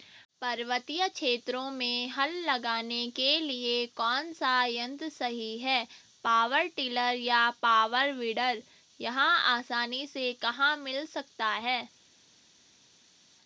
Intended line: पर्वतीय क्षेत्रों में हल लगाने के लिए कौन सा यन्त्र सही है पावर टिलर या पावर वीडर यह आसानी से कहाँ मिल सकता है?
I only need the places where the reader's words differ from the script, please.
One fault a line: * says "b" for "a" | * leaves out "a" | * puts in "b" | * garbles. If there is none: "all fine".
all fine